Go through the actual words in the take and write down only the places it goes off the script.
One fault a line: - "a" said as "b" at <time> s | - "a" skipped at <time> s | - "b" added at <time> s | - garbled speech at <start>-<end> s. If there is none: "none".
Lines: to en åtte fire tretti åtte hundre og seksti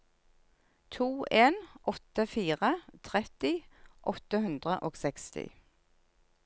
none